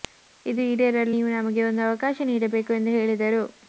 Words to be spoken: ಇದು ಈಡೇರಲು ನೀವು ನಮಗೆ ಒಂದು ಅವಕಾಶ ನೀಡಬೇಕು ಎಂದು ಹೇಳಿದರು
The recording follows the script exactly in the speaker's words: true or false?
true